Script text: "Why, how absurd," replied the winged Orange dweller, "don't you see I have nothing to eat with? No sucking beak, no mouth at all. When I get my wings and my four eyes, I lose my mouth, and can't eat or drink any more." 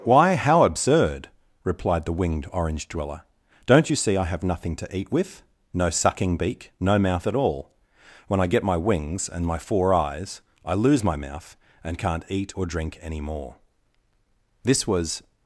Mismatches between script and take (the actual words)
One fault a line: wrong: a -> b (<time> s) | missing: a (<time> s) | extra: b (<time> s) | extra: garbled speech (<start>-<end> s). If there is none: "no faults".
extra: This was (14.6 s)